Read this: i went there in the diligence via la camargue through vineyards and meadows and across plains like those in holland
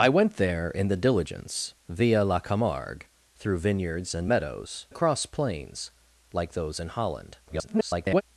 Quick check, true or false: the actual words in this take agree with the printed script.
false